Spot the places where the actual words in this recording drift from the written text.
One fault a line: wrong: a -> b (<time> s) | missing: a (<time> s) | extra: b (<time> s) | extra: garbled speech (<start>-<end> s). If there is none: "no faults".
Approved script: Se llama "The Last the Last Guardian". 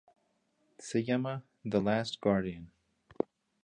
missing: the Last (2.2 s)